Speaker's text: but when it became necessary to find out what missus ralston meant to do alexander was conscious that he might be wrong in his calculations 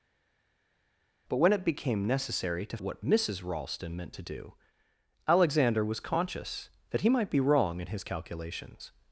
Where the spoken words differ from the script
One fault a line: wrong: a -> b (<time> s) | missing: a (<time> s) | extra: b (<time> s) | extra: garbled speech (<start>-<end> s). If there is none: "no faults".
missing: find out (2.8 s)